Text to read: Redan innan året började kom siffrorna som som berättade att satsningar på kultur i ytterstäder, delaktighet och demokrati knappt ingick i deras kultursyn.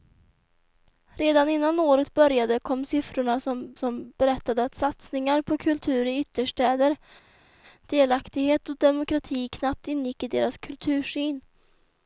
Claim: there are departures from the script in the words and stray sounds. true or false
false